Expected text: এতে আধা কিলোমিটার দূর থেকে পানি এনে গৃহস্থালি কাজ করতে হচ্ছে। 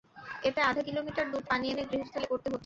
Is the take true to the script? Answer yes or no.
no